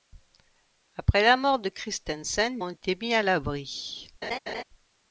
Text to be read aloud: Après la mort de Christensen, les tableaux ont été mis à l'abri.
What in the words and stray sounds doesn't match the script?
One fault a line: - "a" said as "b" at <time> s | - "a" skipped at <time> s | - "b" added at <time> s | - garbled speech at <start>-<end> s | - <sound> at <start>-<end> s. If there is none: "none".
- "les tableaux" skipped at 2.6 s
- laugh at 4.2-4.6 s